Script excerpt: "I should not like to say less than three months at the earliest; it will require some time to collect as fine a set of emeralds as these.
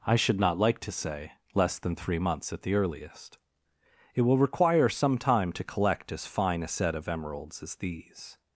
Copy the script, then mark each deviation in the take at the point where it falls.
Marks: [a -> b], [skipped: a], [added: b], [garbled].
"I should not like to say less than three months at the earliest; it will require some time to collect as fine a set of emeralds as these.